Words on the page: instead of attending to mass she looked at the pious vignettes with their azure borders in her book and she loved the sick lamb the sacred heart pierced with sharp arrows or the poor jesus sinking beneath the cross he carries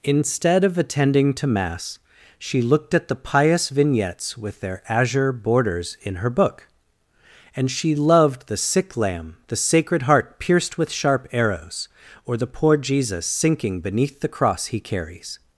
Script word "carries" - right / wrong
right